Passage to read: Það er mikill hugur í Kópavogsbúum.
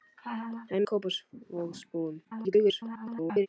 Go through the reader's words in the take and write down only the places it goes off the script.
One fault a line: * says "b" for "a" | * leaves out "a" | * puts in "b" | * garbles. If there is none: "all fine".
* leaves out "mikill hugur"
* garbles